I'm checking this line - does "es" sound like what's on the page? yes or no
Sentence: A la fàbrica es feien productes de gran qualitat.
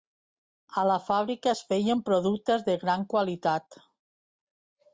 yes